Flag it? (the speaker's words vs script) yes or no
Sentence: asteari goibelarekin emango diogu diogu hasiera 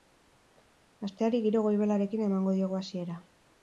yes